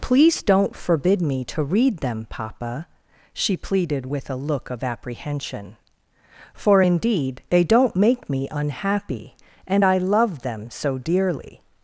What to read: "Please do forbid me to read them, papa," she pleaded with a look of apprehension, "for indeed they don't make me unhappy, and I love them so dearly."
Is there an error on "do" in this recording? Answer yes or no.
yes